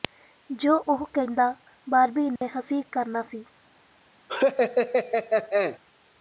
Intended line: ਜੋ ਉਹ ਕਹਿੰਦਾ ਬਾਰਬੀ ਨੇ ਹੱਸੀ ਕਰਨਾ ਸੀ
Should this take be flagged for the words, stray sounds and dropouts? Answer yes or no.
yes